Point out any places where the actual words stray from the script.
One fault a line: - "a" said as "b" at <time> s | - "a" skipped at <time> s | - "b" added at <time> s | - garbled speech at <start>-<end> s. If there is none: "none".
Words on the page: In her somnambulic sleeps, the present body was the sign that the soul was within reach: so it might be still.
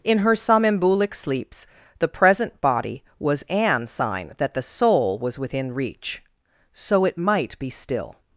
- "the" said as "an" at 3.5 s